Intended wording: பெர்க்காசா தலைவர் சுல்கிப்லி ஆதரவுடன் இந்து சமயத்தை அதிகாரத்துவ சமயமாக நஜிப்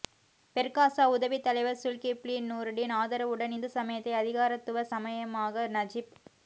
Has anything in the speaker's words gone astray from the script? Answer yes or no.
yes